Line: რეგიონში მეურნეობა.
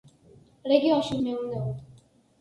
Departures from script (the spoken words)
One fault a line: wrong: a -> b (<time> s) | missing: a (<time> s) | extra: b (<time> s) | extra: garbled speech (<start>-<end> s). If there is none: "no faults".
no faults